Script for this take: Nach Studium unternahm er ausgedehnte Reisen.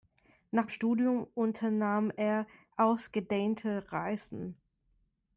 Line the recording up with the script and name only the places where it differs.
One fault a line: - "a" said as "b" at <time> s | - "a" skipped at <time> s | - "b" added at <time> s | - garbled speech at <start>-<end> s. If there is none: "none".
none